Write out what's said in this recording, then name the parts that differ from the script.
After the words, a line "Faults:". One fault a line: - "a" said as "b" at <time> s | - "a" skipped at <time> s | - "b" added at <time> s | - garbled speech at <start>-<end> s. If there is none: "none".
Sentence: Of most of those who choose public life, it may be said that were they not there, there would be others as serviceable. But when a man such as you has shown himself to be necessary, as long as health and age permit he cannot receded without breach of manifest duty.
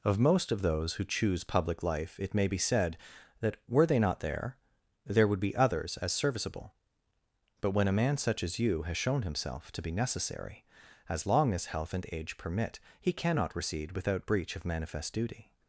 Of most of those who choose public life, it may be said that were they not there, there would be others as serviceable. But when a man such as you has shown himself to be necessary, as long as health and age permit he cannot recede without breach of manifest duty.
Faults:
- "receded" said as "recede" at 13.6 s